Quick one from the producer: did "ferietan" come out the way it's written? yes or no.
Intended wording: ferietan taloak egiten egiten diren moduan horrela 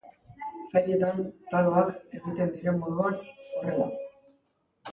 yes